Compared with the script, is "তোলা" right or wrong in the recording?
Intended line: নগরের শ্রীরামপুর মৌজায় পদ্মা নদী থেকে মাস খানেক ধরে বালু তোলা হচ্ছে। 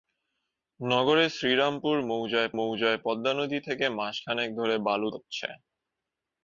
wrong